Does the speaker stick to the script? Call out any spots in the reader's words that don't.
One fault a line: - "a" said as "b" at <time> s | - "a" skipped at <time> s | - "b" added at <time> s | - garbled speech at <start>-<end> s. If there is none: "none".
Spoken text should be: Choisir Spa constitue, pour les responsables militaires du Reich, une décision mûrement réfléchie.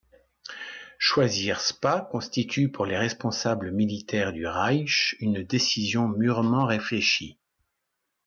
none